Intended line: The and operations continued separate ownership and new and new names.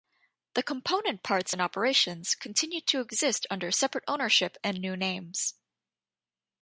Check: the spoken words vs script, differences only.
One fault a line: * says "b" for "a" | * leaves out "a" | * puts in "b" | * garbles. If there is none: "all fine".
* puts in "component parts"
* puts in "to exist under"
* leaves out "and new"